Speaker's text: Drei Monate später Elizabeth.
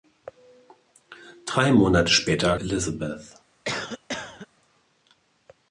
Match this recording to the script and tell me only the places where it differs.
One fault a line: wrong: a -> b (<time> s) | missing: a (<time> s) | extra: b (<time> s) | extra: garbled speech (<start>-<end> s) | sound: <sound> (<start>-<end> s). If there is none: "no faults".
sound: cough (3.7-4.5 s)